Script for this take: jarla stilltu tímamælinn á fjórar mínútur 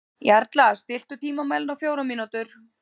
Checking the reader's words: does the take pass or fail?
pass